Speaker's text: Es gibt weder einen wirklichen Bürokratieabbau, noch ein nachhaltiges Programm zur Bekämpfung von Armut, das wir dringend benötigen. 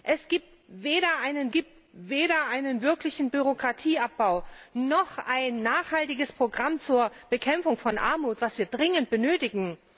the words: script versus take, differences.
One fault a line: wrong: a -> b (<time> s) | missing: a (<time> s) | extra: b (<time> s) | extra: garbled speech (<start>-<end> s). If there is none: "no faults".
extra: gibt weder einen (1.5 s)